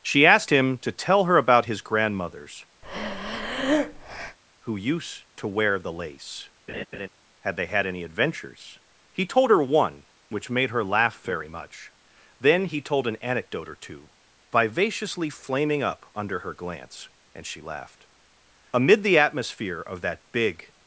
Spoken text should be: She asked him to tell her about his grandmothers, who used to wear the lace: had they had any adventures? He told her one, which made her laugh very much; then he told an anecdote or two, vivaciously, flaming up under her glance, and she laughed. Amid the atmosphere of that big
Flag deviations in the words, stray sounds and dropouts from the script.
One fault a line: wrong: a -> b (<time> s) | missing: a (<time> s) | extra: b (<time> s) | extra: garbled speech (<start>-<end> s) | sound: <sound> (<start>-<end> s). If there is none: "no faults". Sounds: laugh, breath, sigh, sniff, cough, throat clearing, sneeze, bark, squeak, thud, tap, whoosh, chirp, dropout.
sound: breath (2.8-4.4 s)
sound: laugh (6.7-7.1 s)